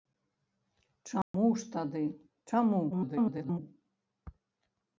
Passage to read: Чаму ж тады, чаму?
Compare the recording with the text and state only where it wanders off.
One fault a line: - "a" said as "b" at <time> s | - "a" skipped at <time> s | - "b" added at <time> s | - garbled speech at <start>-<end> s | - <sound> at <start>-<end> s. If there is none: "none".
- dropout at 1.2-1.3 s
- garbled speech at 2.9-3.6 s